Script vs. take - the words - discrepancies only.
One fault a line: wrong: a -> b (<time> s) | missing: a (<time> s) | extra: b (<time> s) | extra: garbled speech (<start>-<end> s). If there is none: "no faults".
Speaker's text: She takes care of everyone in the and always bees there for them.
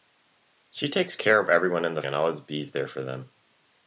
no faults